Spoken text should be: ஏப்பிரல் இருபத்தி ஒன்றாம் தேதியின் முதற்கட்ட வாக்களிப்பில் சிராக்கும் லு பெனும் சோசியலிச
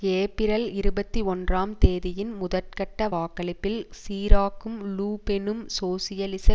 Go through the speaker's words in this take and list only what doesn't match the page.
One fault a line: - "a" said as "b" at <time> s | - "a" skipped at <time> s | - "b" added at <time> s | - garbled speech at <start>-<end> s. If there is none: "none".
none